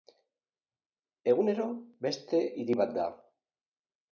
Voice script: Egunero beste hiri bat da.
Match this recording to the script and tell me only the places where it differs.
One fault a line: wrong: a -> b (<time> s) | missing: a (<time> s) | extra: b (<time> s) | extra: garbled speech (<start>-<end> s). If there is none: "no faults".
no faults